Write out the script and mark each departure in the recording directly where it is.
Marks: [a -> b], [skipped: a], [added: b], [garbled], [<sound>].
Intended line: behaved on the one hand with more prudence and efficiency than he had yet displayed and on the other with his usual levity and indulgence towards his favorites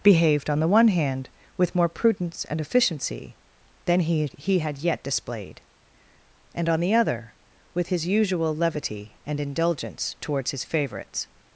behaved on the one hand with more prudence and efficiency than he [added: he] had yet displayed and on the other with his usual levity and indulgence towards his favorites